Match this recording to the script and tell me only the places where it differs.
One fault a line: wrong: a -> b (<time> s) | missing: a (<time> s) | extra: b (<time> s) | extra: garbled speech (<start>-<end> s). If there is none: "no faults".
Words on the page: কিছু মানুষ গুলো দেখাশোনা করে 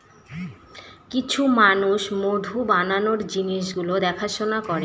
extra: মধু বানানোর জিনিস (2.2 s)